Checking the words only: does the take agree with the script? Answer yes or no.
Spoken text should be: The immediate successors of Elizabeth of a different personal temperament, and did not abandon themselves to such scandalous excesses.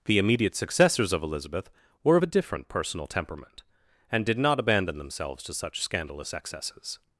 no